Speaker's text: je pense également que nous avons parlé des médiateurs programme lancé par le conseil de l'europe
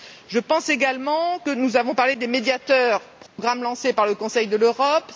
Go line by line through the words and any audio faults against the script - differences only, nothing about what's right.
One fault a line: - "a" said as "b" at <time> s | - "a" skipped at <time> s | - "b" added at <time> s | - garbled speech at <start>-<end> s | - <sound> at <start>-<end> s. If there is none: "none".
- dropout at 3.3-3.4 s